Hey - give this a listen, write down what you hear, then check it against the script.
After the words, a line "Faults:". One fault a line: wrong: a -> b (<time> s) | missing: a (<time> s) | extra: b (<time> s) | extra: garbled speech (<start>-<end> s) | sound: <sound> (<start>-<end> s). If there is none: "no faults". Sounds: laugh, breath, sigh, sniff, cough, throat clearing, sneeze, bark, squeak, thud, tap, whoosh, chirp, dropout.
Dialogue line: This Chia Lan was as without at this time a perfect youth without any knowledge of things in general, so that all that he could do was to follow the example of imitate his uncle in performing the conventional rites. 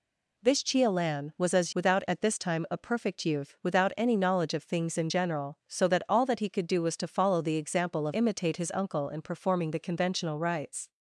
This Chia Lan was as without at this time a perfect youth without any knowledge of things in general, so that all that he could do was to follow the example of imitate his uncle in performing the conventional rites.
Faults:
no faults